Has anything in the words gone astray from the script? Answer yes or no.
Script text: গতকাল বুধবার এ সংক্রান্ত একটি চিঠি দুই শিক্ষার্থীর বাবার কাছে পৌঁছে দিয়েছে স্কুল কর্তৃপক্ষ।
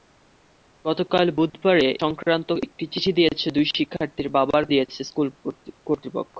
yes